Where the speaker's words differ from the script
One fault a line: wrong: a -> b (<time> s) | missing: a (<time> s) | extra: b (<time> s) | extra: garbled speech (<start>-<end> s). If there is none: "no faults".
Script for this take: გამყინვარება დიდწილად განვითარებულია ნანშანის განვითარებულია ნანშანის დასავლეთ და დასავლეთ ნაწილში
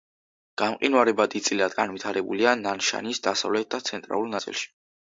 missing: განვითარებულია ნანშანის (3.3 s)
wrong: დასავლეთ -> ცენტრალურ (3.9 s)